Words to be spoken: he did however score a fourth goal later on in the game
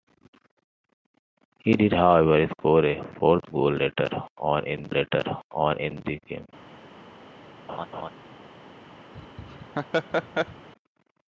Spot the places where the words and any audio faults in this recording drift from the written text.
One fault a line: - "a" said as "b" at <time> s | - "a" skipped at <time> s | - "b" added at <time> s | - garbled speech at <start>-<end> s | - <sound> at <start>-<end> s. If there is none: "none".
- "later on in" added at 4.9 s
- laugh at 7.7-8.1 s
- laugh at 9.1-10.7 s